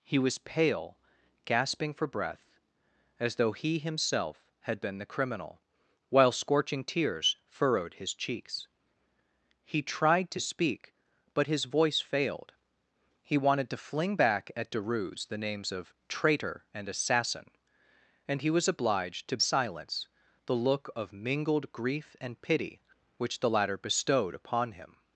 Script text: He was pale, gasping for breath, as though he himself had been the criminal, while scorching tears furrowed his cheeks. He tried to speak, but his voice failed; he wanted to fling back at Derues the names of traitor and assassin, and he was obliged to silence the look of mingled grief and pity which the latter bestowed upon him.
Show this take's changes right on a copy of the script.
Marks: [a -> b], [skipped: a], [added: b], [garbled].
He was pale, gasping for breath, as though he himself had been the criminal, while scorching tears furrowed his cheeks. He tried to speak, but his voice failed; he wanted to fling back at Derues the names of traitor and assassin, and he was obliged to silence the look of mingled grief and pity which the latter bestowed upon him.